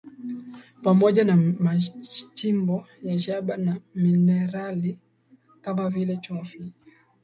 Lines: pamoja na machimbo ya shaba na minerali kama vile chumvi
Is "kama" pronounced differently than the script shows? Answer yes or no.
no